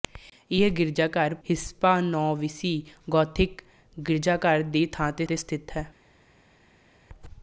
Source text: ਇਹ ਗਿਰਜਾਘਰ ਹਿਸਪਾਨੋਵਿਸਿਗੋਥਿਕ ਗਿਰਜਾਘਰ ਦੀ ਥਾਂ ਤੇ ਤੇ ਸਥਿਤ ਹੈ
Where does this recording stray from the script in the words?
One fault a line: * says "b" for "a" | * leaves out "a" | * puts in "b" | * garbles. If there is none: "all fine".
all fine